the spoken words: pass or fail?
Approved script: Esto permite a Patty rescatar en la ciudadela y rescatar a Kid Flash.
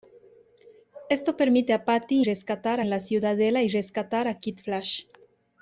pass